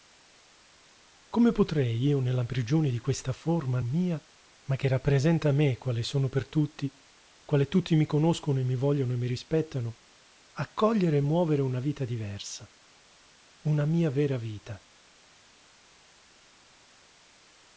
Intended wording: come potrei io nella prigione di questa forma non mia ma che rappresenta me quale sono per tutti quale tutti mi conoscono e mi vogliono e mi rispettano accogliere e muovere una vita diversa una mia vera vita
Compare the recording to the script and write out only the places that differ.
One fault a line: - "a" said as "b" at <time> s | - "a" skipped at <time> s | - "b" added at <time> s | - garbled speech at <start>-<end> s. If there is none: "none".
- "non" skipped at 3.8 s